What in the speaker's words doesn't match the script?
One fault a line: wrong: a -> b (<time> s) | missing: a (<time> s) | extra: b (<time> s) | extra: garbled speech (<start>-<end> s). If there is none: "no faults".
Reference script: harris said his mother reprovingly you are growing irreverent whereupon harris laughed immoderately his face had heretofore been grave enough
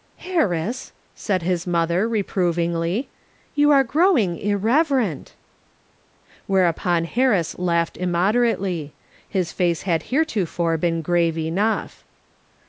no faults